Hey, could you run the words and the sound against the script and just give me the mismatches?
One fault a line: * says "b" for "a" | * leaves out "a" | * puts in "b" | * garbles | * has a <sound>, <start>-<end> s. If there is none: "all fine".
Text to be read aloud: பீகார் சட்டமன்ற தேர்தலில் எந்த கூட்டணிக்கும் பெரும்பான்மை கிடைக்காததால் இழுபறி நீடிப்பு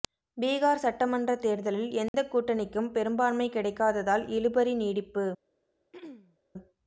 * has a dropout, 2.1-2.1 s
* has a throat clearing, 5.9-6.4 s